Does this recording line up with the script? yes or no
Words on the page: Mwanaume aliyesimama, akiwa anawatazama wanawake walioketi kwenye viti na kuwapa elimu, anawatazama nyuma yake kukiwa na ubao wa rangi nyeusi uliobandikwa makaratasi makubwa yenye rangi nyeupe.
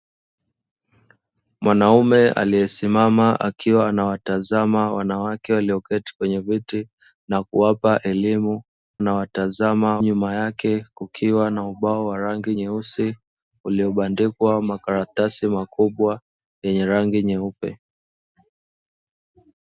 yes